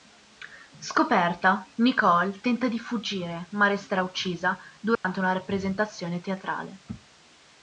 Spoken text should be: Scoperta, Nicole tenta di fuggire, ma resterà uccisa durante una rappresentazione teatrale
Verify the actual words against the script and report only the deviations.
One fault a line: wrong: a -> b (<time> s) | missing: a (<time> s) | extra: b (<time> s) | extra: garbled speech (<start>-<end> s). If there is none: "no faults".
no faults